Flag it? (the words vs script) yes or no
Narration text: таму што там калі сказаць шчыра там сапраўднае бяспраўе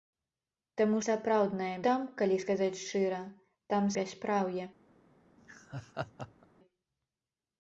yes